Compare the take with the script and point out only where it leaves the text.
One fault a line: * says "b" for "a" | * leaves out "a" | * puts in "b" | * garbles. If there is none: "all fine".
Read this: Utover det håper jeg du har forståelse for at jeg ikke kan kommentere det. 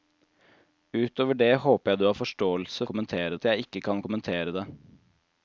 * says "kommentere" for "for"